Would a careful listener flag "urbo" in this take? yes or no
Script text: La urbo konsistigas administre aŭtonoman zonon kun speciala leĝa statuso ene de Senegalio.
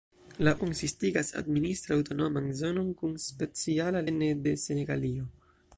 yes